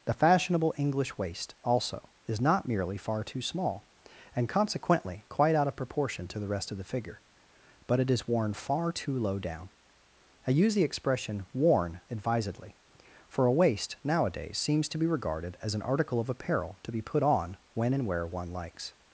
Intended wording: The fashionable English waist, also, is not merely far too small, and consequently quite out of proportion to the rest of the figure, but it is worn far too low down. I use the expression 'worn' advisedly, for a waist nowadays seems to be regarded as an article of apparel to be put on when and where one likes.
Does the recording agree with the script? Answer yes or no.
yes